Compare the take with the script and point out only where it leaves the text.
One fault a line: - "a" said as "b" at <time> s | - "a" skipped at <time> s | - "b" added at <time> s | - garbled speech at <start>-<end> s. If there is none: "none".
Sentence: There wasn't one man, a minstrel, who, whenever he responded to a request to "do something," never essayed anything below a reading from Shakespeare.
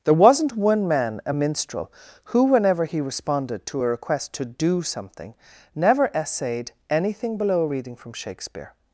none